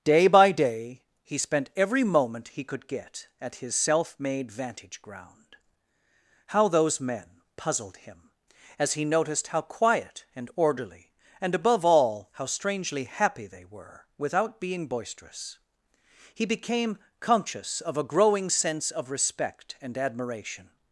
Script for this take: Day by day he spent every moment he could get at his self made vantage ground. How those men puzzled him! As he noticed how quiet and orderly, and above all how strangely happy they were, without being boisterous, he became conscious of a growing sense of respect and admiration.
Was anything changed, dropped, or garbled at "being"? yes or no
no